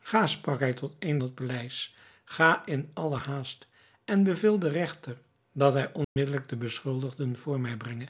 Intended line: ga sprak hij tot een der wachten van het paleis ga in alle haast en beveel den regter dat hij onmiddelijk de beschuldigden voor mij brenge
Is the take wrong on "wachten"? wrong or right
wrong